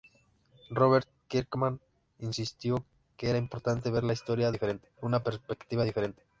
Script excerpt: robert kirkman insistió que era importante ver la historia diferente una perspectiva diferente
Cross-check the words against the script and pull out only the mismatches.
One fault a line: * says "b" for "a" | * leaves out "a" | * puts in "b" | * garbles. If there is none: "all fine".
all fine